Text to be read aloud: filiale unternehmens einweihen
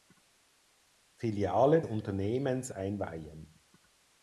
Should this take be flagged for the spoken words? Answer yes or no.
no